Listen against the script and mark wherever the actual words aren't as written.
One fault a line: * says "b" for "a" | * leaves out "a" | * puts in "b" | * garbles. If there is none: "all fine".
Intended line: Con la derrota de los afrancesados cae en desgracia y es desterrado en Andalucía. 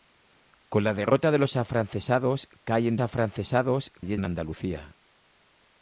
* says "afrancesados" for "desgracia"
* leaves out "desterrado"